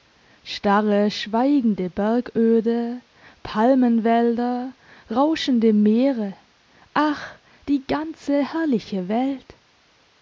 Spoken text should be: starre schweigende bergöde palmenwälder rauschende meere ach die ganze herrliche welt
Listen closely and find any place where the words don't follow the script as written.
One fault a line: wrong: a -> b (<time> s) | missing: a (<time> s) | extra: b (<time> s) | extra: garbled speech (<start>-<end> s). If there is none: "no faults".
no faults